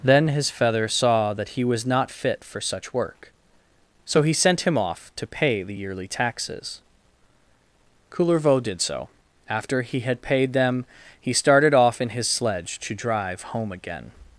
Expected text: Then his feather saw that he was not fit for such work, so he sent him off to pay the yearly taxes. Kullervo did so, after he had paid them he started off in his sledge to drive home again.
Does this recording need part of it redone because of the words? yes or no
no